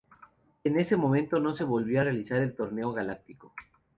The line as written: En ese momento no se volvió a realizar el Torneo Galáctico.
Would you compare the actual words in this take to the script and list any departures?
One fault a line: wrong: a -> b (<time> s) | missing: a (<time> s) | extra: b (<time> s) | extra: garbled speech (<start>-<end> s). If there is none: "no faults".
no faults